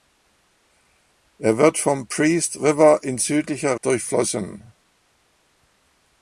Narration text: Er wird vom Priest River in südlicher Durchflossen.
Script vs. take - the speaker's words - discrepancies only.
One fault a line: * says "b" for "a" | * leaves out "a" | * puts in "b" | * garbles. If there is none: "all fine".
all fine